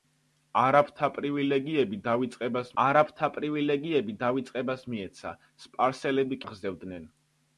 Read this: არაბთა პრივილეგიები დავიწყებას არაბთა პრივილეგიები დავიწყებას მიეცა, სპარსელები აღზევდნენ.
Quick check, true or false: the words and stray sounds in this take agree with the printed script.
true